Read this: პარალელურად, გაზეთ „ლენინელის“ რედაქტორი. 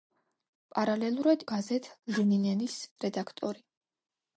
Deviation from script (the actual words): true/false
false